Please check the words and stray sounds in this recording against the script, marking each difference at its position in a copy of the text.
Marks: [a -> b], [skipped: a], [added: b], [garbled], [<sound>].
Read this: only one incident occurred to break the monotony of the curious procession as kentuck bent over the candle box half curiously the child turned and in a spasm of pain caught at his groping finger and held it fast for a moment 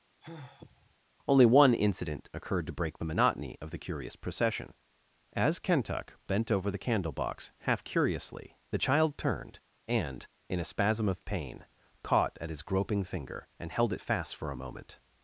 [sigh] only one incident occurred to break the monotony of the curious procession as kentuck bent over the candle box half curiously the child turned and in a spasm of pain caught at his groping finger and held it fast for a moment